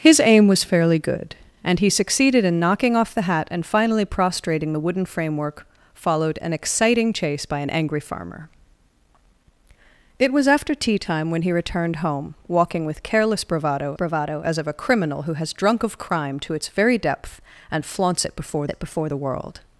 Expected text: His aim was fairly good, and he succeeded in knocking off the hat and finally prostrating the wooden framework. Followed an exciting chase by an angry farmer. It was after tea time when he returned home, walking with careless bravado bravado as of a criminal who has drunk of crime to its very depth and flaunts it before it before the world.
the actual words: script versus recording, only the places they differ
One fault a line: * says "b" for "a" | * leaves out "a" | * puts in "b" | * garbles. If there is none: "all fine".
all fine